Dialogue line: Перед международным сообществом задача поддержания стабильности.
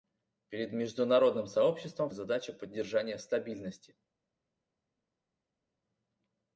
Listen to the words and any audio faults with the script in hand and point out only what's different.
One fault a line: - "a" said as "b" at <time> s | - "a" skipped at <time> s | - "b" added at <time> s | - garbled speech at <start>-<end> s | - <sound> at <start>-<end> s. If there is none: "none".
none